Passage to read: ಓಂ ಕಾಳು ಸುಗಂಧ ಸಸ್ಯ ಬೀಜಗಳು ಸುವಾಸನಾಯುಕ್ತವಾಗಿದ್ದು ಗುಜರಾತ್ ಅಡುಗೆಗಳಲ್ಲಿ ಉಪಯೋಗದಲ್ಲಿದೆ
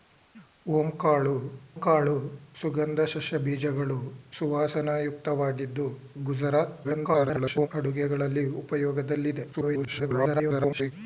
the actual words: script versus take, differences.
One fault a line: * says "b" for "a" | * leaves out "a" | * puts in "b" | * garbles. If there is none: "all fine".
* puts in "ಕಾಳು"
* garbles
* garbles